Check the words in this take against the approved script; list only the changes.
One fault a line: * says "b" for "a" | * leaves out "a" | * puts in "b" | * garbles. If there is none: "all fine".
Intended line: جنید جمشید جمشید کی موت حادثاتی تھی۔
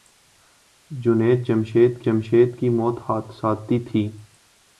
all fine